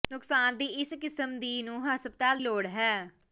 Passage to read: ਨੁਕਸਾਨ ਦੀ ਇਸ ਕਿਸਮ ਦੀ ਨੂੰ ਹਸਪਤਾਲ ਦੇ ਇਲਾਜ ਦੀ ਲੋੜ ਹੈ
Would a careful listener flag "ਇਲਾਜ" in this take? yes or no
yes